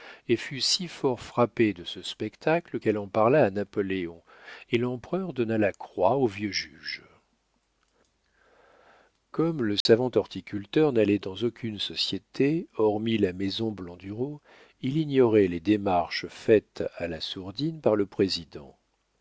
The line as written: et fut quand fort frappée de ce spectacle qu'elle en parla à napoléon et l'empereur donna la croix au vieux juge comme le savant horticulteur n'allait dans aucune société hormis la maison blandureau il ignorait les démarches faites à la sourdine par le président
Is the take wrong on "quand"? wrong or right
wrong